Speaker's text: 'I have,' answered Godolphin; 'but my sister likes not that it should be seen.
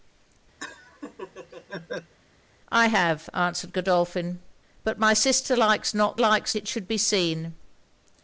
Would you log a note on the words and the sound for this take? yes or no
yes